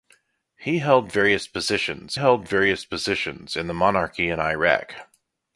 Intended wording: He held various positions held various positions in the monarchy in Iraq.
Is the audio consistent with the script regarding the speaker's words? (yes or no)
yes